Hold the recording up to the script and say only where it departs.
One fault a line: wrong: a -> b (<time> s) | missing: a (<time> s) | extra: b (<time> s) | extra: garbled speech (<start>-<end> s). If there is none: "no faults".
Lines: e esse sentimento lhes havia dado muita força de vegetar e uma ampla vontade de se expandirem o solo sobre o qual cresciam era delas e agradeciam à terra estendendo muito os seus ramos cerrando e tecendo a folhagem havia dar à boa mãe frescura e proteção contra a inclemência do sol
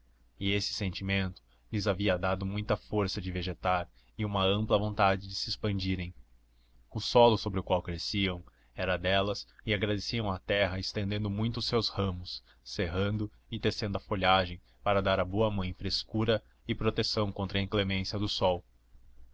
wrong: havia -> para (14.8 s)